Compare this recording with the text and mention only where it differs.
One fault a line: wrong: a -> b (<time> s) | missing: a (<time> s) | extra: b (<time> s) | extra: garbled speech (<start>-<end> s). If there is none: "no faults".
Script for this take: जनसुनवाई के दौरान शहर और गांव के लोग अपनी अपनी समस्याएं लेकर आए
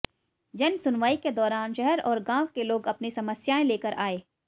missing: अपनी (3.1 s)